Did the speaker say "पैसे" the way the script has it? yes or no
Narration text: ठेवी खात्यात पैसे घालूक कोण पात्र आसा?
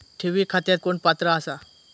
no